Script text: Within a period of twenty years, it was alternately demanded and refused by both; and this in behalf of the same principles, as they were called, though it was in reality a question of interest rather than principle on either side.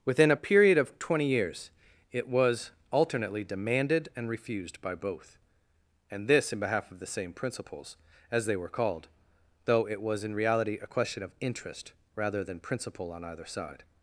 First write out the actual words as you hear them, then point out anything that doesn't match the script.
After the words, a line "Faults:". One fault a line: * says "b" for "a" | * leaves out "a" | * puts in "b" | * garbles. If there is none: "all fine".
Within a period of twenty years, it was alternately demanded and refused by both; and this in behalf of the same principles, as they were called, though it was in reality a question of interest rather than principle on either side.
Faults:
all fine